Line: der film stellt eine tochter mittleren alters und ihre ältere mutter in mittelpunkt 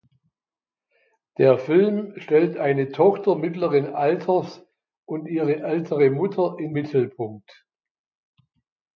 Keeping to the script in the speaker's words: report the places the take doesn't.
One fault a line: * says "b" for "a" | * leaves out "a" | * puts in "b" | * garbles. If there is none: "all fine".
all fine